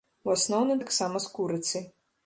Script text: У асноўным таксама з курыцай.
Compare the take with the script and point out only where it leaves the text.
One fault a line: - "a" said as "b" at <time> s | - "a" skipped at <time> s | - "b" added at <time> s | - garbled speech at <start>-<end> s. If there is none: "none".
none